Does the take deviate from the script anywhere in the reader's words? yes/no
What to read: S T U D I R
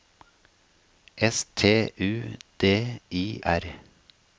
no